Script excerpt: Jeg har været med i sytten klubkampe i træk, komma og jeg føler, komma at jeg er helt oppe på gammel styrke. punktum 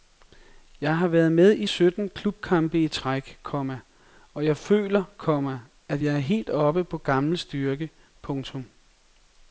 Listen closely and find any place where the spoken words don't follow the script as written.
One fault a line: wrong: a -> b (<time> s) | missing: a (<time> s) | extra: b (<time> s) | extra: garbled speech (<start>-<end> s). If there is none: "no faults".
no faults